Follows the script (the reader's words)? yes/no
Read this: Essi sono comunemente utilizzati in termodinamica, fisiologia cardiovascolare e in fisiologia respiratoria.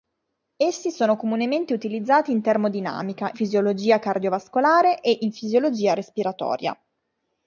yes